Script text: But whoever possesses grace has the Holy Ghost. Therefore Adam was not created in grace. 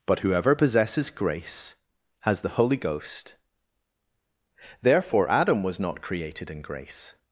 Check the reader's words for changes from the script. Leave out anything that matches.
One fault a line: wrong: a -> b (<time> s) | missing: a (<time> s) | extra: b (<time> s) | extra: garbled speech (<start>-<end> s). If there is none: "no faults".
no faults